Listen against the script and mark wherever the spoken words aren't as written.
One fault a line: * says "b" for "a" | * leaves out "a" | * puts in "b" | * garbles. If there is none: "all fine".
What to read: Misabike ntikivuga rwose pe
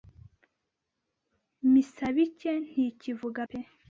* leaves out "rwose"